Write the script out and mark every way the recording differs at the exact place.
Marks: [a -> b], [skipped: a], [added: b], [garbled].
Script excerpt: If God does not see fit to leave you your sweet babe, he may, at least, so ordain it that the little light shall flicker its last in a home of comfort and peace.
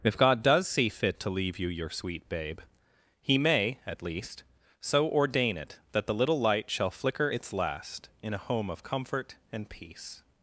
If God does [skipped: not] see fit to leave you your sweet babe, he may, at least, so ordain it that the little light shall flicker its last in a home of comfort and peace.